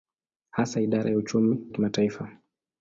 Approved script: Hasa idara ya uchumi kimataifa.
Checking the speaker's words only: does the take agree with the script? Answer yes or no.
yes